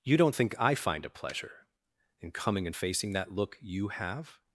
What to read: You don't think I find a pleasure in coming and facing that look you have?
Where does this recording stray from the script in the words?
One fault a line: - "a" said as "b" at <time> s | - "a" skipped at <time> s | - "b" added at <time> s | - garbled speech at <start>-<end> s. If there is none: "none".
none